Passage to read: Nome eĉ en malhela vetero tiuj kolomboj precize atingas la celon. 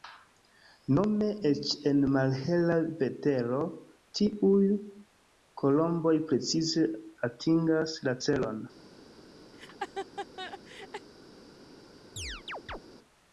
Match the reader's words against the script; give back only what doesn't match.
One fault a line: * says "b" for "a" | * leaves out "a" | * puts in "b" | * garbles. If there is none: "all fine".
all fine